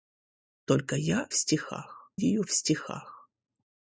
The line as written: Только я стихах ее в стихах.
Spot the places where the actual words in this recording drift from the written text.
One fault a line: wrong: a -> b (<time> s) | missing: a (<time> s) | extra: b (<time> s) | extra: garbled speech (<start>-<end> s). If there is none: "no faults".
no faults